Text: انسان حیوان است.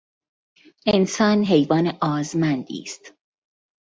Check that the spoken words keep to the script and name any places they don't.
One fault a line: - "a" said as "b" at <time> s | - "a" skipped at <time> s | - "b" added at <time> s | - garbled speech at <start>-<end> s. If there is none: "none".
- "آزمندی" added at 2.0 s